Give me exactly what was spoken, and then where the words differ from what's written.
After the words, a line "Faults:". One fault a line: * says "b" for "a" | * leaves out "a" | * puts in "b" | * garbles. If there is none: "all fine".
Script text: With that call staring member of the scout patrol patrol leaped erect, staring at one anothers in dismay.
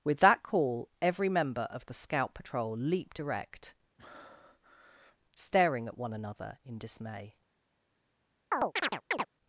With that call every member of the scout patrol leaped erect, staring at one another in dismay.
Faults:
* says "every" for "staring"
* leaves out "patrol"
* says "another" for "anothers"